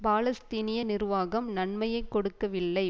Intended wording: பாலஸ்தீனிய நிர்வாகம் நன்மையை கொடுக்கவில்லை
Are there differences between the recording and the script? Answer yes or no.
no